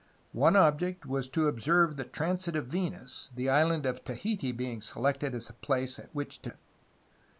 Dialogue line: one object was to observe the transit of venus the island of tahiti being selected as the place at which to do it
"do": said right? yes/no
no